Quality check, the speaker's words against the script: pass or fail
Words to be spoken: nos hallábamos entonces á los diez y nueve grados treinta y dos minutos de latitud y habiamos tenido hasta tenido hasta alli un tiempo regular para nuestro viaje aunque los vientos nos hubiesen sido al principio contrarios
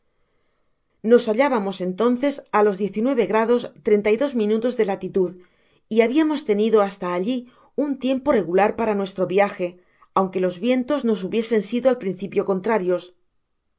fail